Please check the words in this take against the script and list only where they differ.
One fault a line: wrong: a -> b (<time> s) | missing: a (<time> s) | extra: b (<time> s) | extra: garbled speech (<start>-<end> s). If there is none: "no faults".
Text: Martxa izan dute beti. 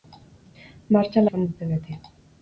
no faults